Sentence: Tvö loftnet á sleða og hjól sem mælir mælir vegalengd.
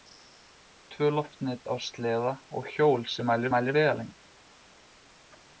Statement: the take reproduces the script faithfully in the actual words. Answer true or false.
true